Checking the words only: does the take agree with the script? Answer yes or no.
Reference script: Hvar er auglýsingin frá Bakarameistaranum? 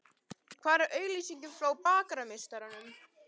yes